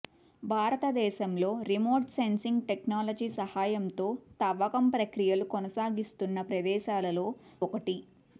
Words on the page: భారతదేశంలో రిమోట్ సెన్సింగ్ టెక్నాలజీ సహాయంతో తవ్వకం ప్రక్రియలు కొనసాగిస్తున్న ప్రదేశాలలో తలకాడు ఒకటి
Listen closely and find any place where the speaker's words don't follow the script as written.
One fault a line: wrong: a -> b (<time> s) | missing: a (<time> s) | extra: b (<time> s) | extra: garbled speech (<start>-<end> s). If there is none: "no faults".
missing: తలకాడు (7.3 s)